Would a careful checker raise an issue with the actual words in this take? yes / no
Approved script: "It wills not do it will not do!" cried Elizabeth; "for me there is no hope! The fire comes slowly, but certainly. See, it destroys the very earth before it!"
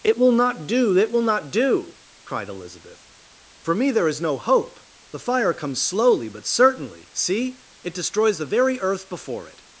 yes